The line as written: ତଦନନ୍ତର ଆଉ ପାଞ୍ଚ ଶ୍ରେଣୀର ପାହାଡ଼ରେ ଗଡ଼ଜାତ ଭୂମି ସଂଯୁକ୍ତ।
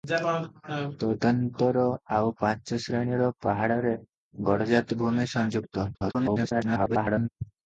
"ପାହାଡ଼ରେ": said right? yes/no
yes